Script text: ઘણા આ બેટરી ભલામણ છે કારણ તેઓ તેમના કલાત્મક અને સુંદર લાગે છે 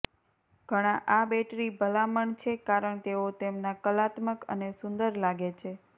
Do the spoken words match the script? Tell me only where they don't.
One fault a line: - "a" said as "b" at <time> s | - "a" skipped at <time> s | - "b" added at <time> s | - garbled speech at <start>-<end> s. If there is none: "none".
none